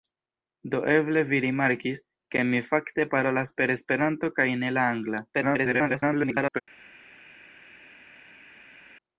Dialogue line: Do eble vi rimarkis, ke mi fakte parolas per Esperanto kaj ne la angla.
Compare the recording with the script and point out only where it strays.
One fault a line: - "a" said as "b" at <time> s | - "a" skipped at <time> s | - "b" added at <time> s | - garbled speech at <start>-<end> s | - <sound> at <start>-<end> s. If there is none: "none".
- garbled speech at 5.3-6.6 s